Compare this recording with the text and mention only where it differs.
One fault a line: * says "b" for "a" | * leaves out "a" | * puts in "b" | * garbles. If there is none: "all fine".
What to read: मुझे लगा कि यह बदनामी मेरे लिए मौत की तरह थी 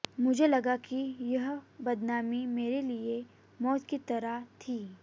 all fine